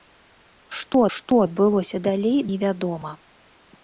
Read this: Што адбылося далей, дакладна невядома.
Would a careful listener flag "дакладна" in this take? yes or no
yes